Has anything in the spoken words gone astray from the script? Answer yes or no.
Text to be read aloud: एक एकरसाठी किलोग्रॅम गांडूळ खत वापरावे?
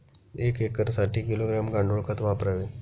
no